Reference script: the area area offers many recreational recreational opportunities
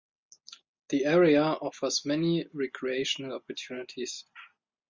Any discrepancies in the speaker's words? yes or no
yes